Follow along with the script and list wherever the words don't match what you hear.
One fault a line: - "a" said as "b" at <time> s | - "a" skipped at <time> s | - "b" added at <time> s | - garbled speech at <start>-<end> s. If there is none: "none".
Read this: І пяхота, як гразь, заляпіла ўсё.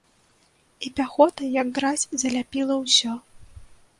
none